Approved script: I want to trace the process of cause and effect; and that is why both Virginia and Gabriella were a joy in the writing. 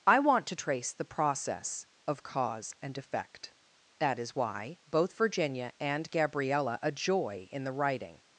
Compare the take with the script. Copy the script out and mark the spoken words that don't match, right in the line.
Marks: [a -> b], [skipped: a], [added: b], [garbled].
I want to trace the process of cause and effect; [skipped: and] that is why both Virginia and Gabriella [skipped: were] a joy in the writing.